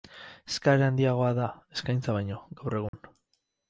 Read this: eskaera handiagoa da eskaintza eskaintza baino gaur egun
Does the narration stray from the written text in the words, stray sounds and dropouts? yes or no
yes